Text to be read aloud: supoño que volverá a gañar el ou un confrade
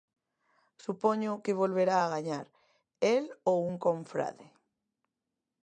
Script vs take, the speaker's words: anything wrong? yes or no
no